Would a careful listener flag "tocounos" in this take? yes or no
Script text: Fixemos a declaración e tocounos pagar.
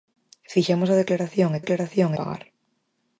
yes